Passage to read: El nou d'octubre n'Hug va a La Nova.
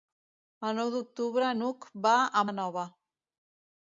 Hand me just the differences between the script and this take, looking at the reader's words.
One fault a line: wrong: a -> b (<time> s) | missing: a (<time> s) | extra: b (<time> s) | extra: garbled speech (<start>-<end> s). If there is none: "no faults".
no faults